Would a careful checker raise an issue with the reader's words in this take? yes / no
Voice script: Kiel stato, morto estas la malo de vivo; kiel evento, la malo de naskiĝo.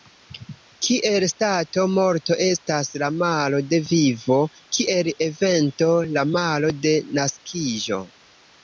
no